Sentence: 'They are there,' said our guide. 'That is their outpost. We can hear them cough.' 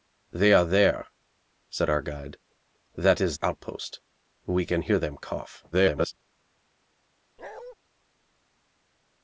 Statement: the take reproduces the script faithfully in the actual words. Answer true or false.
false